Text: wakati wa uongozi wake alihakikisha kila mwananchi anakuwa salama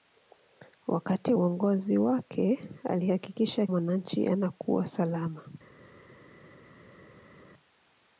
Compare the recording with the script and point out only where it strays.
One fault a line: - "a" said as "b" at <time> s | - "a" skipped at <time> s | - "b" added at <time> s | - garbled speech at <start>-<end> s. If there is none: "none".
- "wa" skipped at 1.3 s
- "kila" skipped at 3.7 s